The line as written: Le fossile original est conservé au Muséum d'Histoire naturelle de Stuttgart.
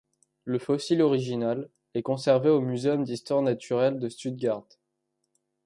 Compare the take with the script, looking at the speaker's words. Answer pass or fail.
pass